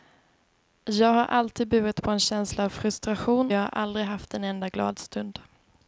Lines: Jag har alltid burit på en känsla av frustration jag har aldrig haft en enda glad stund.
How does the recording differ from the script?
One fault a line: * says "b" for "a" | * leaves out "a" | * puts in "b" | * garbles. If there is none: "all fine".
all fine